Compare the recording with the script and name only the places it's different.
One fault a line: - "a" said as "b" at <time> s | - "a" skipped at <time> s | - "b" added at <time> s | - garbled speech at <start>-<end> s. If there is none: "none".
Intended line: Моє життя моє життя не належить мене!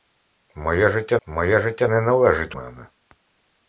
none